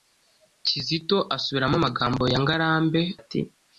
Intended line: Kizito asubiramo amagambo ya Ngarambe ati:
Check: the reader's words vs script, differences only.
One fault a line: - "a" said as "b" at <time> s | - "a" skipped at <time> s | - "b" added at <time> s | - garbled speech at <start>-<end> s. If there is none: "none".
none